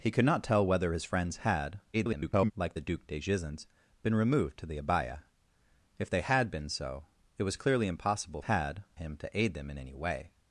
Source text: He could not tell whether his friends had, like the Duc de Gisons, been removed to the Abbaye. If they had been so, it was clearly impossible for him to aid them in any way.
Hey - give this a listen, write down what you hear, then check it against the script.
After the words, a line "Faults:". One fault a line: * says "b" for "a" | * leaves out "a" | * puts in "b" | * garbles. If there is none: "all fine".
He could not tell whether his friends had, [garbled] like the Duc de Gisons, been removed to the Abbaye. If they had been so, it was clearly impossible had him to aid them in any way.
Faults:
* garbles
* says "had" for "for"